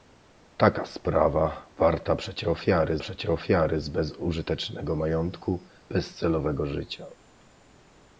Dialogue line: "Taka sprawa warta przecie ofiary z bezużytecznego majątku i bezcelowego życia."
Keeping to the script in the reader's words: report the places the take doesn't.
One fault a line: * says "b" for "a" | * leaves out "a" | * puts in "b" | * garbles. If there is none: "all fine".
* puts in "przecie ofiary"
* leaves out "i"